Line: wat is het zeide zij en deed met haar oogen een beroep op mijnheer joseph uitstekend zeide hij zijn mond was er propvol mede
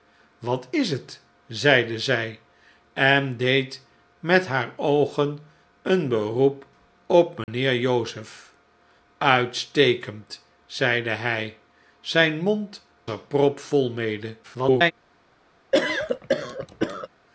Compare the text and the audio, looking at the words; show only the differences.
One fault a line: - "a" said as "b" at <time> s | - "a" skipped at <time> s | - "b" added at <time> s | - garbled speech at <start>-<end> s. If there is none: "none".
- "was" skipped at 12.9 s
- garbled speech at 14.4-14.9 s